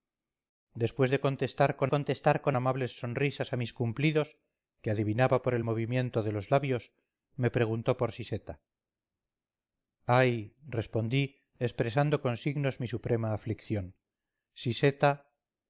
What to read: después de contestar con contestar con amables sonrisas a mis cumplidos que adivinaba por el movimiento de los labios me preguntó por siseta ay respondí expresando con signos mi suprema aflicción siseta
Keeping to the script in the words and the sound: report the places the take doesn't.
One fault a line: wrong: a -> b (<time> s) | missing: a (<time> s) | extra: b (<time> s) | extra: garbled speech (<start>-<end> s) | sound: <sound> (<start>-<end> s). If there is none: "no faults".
no faults